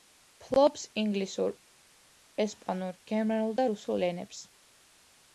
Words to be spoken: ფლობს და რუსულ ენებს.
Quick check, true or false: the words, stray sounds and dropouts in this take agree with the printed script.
false